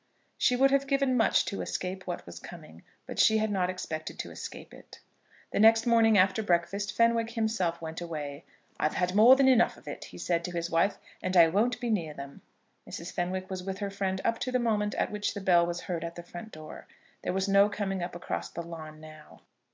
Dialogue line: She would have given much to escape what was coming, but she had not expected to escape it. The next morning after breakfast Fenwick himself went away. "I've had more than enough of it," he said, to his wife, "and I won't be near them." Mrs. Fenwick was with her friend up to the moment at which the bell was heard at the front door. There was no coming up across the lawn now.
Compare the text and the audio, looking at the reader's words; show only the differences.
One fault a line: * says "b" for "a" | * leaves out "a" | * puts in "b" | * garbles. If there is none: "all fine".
all fine